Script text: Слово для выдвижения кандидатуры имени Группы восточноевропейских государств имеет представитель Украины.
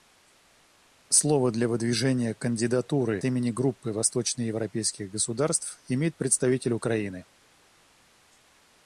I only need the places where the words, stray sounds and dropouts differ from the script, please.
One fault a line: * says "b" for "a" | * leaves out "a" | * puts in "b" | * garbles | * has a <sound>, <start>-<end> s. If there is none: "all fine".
all fine